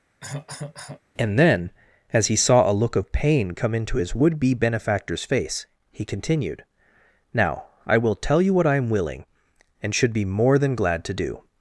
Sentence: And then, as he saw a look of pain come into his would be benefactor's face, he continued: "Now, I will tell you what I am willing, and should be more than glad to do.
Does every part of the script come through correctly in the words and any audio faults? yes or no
no